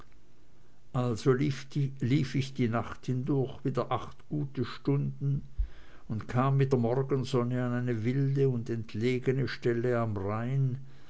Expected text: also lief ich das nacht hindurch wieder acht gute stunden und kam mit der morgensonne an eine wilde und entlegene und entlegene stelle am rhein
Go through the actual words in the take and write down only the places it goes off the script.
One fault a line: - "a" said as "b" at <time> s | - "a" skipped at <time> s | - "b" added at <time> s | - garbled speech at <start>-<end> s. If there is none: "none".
- "das" said as "die" at 2.5 s
- "und entlegene" skipped at 9.5 s